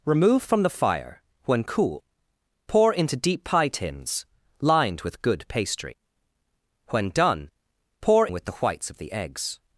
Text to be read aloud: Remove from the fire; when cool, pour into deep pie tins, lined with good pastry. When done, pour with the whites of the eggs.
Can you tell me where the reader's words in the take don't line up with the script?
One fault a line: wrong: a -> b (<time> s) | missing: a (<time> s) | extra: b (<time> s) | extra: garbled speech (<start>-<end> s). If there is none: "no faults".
no faults